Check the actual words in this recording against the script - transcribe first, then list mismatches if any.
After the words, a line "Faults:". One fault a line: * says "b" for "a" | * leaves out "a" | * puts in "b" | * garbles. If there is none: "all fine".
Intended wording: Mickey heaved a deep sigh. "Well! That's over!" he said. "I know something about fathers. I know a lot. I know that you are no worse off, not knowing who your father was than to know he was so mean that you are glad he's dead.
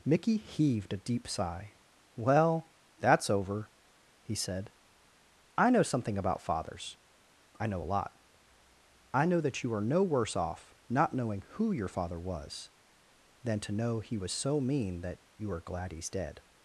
Mickey heaved a deep sigh. "Well! That's over!" he said. "I know something about fathers. I know a lot. I know that you are no worse off, not knowing who your father was than to know he was so mean that you are glad he's dead.
Faults:
all fine